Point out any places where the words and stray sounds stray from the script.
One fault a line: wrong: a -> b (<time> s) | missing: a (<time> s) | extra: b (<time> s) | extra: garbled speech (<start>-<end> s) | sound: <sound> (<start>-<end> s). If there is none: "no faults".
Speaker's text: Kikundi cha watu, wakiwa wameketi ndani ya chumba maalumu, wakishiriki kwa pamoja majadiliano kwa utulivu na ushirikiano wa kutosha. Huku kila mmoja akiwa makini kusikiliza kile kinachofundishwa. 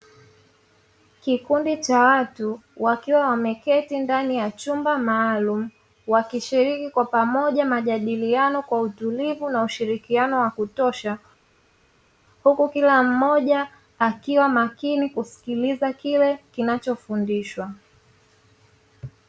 no faults